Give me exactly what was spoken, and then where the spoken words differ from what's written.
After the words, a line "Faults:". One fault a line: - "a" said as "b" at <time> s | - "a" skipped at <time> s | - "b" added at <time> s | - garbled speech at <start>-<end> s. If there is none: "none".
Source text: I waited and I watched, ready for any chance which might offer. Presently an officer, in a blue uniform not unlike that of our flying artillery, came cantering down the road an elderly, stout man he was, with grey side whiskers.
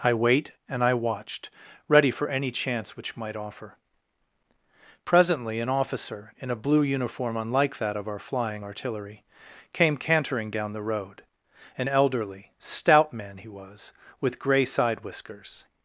I wait and I watched, ready for any chance which might offer. Presently an officer, in a blue uniform unlike that of our flying artillery, came cantering down the road an elderly, stout man he was, with grey side whiskers.
Faults:
- "waited" said as "wait" at 0.1 s
- "not" skipped at 7.4 s